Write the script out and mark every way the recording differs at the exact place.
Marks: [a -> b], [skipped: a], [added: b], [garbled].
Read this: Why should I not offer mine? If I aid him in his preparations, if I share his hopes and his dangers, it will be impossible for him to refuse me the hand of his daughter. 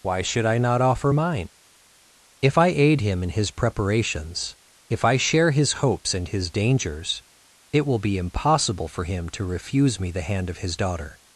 Why should I not offer mine? If I aid him in his preparations, if I share his hopes and his dangers, it will be impossible for him to refuse me the hand of his daughter.